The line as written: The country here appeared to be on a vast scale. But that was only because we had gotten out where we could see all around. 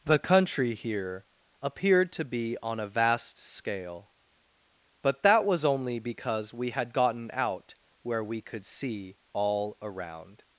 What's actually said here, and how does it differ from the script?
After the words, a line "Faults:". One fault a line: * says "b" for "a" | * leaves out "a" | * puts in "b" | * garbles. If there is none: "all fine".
The country here appeared to be on a vast scale. But that was only because we had gotten out where we could see all around.
Faults:
all fine